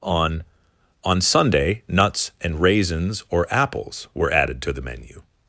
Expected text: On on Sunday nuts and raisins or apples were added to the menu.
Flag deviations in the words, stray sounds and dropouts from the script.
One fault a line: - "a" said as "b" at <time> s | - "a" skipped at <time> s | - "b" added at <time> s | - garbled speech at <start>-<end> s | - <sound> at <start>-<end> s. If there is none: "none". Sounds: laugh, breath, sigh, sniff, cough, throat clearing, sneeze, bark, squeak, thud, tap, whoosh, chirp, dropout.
none